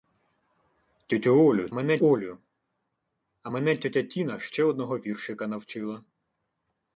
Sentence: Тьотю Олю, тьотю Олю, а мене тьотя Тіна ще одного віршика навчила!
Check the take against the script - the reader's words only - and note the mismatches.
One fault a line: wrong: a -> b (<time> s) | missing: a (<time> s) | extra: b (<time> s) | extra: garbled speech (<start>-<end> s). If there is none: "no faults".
wrong: тьотю -> мене (1.7 s)